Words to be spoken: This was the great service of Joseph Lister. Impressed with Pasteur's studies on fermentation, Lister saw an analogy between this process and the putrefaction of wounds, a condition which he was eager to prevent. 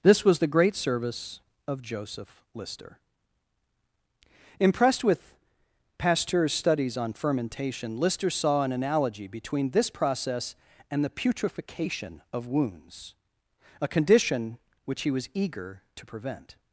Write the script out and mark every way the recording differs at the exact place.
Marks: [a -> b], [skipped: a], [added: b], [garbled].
This was the great service of Joseph Lister. Impressed with Pasteur's studies on fermentation, Lister saw an analogy between this process and the putrefaction of wounds, a condition which he was eager to prevent.